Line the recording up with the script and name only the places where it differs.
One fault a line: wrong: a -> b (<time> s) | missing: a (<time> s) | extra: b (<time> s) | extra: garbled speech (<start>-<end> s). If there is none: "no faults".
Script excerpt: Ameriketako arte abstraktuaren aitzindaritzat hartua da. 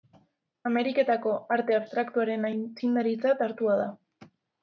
no faults